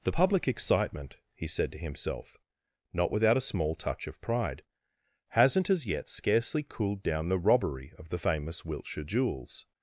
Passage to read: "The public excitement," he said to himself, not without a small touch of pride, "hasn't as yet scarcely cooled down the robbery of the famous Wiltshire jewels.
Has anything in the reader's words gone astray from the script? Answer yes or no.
no